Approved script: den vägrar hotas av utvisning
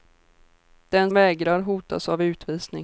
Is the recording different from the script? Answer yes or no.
no